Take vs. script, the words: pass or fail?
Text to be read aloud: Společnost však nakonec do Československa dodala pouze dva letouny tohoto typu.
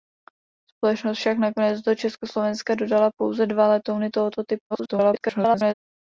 fail